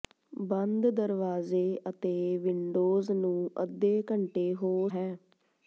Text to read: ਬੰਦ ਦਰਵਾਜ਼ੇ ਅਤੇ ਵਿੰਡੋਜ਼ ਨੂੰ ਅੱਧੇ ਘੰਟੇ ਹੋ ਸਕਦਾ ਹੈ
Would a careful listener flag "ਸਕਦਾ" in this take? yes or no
yes